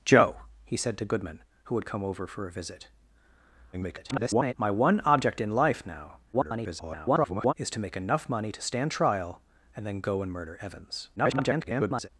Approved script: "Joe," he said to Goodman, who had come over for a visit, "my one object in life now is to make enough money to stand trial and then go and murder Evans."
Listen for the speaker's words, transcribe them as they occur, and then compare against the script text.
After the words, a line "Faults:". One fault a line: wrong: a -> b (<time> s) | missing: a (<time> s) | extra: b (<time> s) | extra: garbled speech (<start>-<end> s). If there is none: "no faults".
"Joe," he said to Goodman, who had come over for a visit, [garbled] "my one object in life now [garbled] is to make enough money to stand trial and then go and murder Evans." [garbled]
Faults:
extra: garbled speech (3.7-4.5 s)
extra: garbled speech (6.3-7.5 s)
extra: garbled speech (11.2-12.1 s)